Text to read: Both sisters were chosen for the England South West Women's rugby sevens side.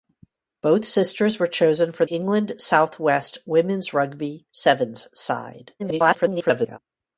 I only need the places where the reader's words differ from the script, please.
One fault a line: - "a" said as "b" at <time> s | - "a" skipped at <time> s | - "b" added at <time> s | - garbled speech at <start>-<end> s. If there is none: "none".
- "the" skipped at 2.1 s
- garbled speech at 5.8-6.8 s